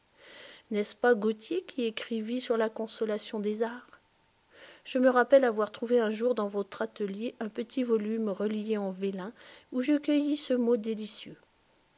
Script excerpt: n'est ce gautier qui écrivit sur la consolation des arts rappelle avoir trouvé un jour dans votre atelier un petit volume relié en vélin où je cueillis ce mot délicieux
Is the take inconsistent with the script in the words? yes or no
yes